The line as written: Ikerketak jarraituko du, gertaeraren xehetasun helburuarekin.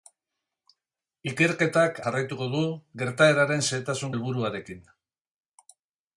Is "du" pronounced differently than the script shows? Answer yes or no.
no